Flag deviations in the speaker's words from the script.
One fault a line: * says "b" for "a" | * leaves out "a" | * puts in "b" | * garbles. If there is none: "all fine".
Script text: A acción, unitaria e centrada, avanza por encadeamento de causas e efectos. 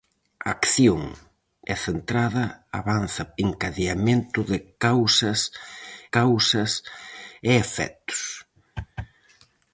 * leaves out "unitaria"
* leaves out "por"
* puts in "causas"